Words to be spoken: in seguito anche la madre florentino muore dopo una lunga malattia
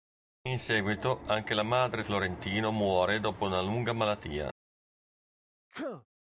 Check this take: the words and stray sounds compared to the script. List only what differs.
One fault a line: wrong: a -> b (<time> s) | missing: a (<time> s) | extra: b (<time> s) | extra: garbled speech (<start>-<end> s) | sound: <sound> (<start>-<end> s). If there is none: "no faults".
sound: sneeze (5.7-6.1 s)